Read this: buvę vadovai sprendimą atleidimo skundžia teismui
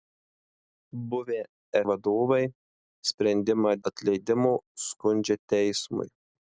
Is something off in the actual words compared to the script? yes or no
no